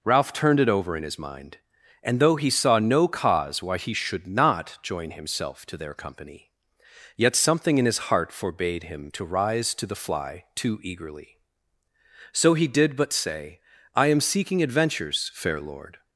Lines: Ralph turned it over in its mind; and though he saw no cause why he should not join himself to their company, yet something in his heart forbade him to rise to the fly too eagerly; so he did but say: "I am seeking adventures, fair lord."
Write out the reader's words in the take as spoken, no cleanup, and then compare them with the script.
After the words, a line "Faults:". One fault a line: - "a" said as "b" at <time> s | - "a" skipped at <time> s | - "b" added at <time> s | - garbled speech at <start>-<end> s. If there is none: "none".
Ralph turned it over in his mind; and though he saw no cause why he should not join himself to their company, yet something in his heart forbade him to rise to the fly too eagerly; so he did but say: "I am seeking adventures, fair lord."
Faults:
- "its" said as "his" at 1.0 s